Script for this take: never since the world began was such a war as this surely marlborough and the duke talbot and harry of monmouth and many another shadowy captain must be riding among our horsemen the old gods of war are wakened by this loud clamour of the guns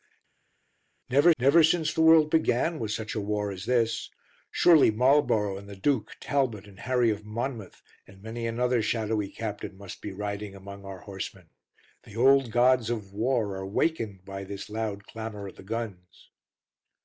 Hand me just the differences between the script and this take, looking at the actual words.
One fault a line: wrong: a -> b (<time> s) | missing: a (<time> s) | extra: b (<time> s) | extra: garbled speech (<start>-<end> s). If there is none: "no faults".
extra: never (1.4 s)